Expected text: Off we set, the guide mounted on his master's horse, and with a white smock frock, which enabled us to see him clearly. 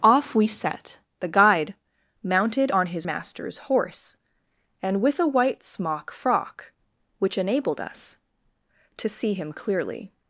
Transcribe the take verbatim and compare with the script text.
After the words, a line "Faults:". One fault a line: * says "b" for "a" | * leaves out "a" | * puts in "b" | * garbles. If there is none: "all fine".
Off we set, the guide mounted on his master's horse, and with a white smock frock, which enabled us to see him clearly.
Faults:
all fine